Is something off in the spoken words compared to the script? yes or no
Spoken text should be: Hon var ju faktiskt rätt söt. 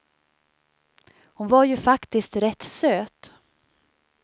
no